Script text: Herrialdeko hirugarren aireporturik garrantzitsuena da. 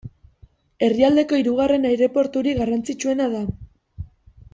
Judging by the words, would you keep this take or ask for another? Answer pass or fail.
pass